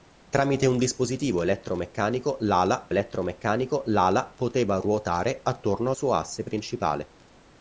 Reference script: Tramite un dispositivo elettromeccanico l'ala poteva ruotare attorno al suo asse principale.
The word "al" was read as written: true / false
false